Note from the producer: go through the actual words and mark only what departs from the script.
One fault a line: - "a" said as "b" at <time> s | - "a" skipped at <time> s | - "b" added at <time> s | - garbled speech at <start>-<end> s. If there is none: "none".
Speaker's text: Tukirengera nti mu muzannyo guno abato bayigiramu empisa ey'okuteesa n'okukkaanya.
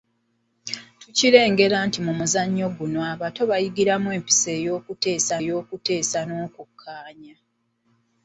- "ey'okuteesa" added at 5.4 s